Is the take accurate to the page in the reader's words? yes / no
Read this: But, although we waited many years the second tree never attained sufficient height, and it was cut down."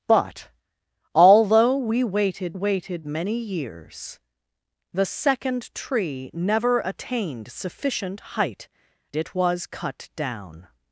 no